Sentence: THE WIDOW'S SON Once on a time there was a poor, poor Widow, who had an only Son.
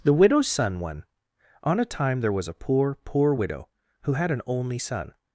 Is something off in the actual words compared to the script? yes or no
yes